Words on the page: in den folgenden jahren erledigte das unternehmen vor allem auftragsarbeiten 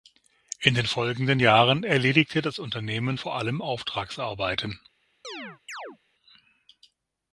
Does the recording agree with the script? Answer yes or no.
yes